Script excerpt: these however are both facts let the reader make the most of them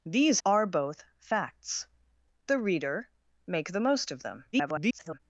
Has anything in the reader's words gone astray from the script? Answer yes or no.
yes